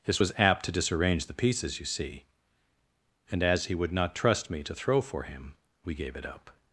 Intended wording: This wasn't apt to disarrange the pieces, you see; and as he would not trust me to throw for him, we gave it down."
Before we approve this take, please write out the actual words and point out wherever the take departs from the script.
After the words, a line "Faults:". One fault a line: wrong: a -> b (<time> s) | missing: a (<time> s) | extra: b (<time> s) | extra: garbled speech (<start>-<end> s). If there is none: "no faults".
This was apt to disarrange the pieces, you see; and as he would not trust me to throw for him, we gave it up."
Faults:
wrong: wasn't -> was (0.2 s)
wrong: down -> up (6.3 s)